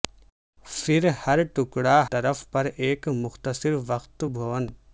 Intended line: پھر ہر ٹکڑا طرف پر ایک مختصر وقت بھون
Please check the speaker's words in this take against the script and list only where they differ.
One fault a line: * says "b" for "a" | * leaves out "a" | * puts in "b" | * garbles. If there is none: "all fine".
all fine